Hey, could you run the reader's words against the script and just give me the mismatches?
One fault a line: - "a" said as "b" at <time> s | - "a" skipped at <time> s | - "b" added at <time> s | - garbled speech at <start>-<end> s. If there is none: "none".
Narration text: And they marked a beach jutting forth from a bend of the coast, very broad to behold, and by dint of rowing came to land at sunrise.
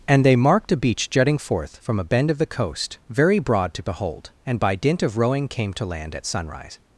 none